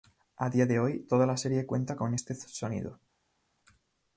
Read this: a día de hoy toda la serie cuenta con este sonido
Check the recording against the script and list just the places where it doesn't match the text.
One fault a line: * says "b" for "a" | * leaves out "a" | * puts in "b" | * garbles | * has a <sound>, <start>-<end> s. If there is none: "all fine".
all fine